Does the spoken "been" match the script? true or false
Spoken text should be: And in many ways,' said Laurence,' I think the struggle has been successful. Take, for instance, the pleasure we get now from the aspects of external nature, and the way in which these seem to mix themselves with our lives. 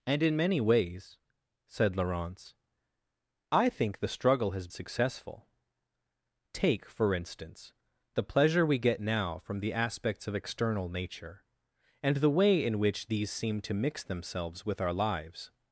false